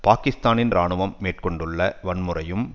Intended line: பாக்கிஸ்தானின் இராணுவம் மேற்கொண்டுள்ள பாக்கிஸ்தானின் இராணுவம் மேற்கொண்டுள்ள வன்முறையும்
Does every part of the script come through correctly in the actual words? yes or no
no